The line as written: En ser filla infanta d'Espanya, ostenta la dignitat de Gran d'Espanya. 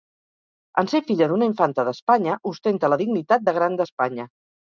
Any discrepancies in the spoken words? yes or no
yes